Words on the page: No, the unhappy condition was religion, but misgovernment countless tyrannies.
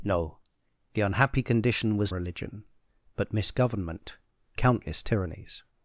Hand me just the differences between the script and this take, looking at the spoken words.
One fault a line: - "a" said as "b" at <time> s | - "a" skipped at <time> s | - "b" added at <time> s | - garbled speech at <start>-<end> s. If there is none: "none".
none